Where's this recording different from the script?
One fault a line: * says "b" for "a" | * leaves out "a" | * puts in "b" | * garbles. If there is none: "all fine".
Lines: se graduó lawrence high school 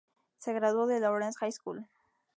* puts in "de"